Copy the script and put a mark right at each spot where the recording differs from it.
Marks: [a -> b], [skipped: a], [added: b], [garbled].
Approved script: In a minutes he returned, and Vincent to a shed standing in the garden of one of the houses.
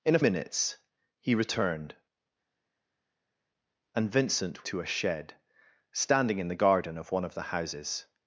In a minutes he returned, and Vincent to a shed standing in the garden of one of the houses.